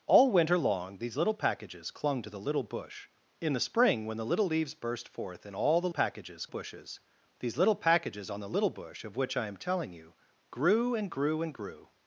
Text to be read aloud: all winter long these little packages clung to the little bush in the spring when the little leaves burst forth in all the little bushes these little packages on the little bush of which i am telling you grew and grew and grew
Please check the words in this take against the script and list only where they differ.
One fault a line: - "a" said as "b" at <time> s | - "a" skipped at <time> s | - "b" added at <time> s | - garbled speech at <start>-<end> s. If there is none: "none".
- "little" said as "packages" at 5.9 s